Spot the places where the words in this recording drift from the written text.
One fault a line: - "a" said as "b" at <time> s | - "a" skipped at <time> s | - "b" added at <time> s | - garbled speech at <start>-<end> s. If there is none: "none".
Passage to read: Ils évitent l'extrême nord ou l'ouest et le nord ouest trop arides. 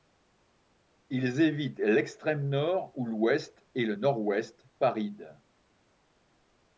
- "trop" skipped at 4.6 s